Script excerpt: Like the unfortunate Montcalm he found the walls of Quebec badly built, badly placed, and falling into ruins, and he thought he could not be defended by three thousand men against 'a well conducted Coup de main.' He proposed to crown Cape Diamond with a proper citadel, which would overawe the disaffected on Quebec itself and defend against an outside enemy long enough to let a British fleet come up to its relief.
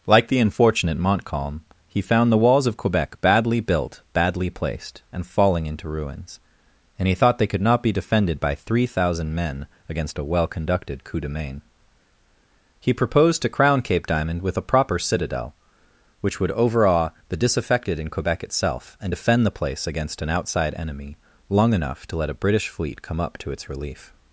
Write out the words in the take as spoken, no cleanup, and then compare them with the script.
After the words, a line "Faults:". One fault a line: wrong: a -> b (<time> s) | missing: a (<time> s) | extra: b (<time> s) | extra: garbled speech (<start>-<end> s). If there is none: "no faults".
Like the unfortunate Montcalm he found the walls of Quebec badly built, badly placed, and falling into ruins, and he thought they could not be defended by three thousand men against 'a well conducted Coup de main.' He proposed to crown Cape Diamond with a proper citadel, which would overawe the disaffected in Quebec itself and defend the place against an outside enemy long enough to let a British fleet come up to its relief.
Faults:
wrong: he -> they (7.4 s)
wrong: on -> in (18.0 s)
extra: the place (19.4 s)